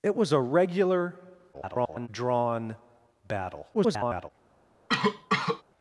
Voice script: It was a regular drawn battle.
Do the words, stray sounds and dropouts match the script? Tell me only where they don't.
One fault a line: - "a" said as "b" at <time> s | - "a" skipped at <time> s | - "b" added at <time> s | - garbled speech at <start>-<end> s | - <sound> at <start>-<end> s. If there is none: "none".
- garbled speech at 1.5-2.1 s
- garbled speech at 3.7-4.3 s
- cough at 4.9-5.6 s